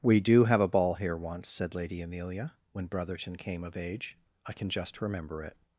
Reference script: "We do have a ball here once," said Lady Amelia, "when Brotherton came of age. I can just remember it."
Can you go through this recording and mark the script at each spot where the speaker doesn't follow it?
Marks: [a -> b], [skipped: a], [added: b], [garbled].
"We do have a ball here once," said Lady Amelia, "when Brotherton came of age. I can just remember it."